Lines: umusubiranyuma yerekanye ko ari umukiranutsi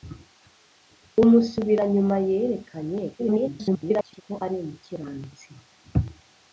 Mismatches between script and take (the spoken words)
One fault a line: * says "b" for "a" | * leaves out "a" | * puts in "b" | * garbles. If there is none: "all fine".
* garbles